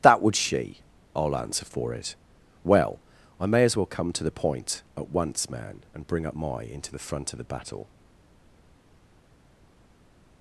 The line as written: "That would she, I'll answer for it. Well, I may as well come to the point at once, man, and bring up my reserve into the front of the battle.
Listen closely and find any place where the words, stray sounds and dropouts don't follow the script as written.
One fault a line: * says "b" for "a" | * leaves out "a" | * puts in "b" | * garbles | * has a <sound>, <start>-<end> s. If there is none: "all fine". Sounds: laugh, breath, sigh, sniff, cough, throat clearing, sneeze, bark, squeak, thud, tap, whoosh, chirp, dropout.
* leaves out "reserve"